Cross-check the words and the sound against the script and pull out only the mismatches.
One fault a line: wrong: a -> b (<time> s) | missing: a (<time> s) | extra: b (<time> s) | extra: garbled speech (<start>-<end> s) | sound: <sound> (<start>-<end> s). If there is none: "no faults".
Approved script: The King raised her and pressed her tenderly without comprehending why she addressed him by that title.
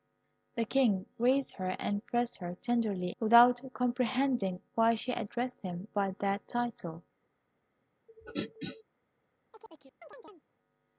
sound: throat clearing (8.1-8.8 s)
sound: chirp (9.5-10.5 s)